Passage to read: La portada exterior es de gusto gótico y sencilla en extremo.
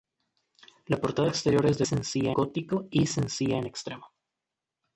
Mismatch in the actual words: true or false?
true